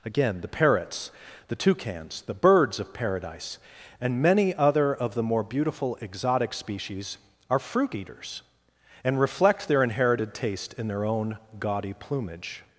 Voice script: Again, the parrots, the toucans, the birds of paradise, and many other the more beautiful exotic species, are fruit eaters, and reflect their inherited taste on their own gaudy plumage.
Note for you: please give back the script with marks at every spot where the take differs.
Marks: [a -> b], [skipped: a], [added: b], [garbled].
Again, the parrots, the toucans, the birds of paradise, and many other [added: of] the more beautiful exotic species, are fruit eaters, and reflect their inherited taste [on -> in] their own gaudy plumage.